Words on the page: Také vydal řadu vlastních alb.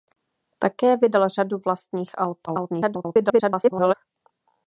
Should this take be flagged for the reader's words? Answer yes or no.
yes